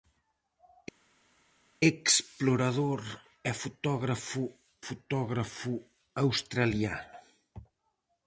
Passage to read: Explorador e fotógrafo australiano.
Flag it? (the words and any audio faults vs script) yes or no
yes